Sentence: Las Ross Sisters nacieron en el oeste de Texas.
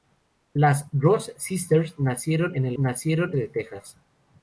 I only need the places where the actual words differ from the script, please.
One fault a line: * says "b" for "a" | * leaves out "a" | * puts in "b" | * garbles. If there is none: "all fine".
* says "nacieron" for "oeste"